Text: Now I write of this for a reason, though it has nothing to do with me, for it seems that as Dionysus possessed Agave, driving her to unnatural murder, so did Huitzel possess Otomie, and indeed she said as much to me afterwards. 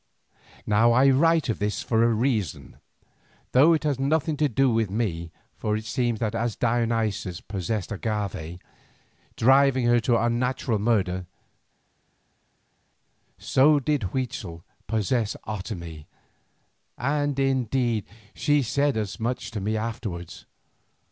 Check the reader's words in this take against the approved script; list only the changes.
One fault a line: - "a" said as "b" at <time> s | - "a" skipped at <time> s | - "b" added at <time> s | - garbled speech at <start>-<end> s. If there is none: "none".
none